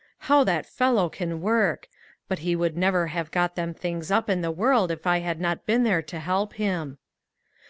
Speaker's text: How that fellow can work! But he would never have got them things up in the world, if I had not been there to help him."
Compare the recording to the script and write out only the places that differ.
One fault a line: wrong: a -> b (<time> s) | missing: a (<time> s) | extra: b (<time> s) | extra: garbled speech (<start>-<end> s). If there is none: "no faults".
no faults